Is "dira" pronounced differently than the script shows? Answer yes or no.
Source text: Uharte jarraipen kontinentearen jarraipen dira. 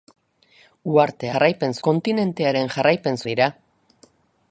no